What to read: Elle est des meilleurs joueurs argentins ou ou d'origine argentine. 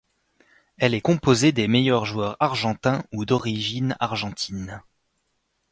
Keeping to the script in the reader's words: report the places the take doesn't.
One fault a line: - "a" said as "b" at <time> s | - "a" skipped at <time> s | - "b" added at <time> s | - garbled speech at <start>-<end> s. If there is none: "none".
- "composée" added at 1.0 s
- "ou" skipped at 3.2 s